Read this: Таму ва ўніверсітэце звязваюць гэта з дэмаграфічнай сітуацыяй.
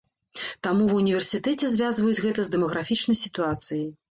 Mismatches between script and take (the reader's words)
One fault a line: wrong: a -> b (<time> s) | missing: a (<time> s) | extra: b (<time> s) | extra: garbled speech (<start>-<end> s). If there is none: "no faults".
no faults